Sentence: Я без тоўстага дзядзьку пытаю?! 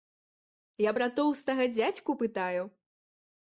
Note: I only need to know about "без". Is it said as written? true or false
false